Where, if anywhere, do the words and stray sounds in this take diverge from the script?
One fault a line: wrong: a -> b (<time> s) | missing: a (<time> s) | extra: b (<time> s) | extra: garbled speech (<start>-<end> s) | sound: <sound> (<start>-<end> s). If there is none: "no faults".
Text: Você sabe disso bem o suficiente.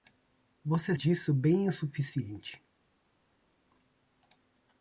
missing: sabe (0.9 s)